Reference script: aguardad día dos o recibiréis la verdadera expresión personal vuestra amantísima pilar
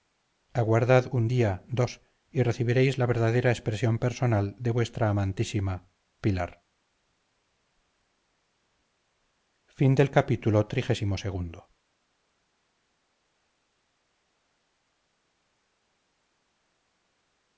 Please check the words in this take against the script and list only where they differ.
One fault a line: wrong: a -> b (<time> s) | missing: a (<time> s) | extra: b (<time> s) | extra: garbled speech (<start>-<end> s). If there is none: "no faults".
extra: un (1.1 s)
wrong: o -> y (2.3 s)
extra: de (4.6 s)